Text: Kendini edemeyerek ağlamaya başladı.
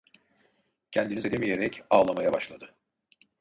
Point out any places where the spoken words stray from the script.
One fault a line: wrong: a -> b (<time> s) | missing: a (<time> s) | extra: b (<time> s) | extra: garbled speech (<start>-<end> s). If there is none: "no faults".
no faults